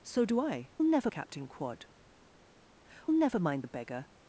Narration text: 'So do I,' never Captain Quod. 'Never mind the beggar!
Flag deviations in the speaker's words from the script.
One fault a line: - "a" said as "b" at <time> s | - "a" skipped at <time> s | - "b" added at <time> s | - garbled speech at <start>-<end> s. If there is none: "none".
none